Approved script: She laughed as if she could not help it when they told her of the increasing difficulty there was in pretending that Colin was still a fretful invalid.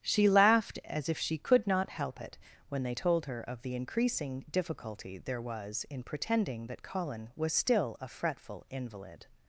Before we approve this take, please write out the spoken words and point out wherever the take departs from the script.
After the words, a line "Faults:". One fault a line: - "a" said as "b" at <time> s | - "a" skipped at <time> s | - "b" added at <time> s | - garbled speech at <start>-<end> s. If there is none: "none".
She laughed as if she could not help it when they told her of the increasing difficulty there was in pretending that Colin was still a fretful invalid.
Faults:
none